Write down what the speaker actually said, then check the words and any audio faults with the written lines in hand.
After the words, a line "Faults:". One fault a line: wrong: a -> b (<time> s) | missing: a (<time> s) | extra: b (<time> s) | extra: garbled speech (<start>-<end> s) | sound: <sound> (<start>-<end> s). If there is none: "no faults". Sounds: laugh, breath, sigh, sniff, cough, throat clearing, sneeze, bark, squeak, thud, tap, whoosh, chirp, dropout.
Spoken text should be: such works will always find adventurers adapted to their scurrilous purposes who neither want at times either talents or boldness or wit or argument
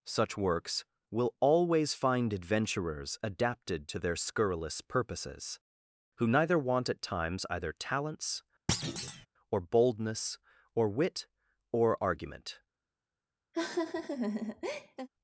such works will always find adventurers adapted to their scurrilous purposes who neither want at times either talents or boldness or wit or argument
Faults:
sound: thud (8.7-9.3 s)
sound: laugh (13.5-15.1 s)